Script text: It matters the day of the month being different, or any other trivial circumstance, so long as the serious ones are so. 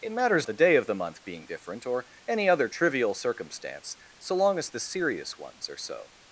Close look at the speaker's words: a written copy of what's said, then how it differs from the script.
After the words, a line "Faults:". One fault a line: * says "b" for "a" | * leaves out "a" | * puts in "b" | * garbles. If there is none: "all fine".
It matters the day of the month being different, or any other trivial circumstance, so long as the serious ones are so.
Faults:
all fine